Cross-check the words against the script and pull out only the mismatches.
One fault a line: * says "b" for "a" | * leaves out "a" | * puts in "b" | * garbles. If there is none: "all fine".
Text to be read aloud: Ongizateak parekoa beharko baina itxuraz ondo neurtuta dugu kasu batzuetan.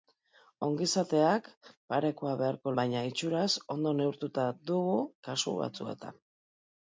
all fine